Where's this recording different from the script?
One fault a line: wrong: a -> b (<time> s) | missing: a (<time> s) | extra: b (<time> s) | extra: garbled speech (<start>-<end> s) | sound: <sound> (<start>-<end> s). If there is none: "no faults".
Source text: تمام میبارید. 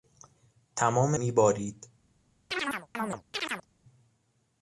sound: chirp (2.5-3.7 s)